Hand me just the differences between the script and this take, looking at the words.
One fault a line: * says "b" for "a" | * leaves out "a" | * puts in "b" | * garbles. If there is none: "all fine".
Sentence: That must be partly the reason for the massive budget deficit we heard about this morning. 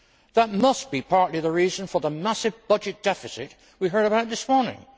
all fine